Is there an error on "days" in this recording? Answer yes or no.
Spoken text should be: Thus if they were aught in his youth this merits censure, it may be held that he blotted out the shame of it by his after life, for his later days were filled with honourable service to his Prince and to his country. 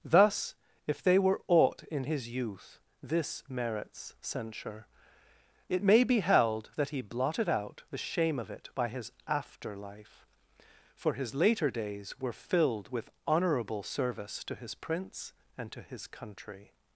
no